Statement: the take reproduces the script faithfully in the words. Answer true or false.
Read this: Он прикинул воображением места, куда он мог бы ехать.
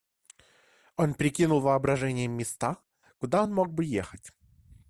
true